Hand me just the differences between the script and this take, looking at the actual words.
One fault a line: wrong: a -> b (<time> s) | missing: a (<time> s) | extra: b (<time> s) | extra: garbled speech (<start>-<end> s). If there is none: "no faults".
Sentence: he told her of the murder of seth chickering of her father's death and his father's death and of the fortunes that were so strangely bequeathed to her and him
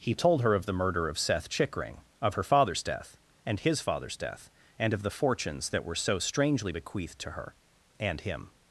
no faults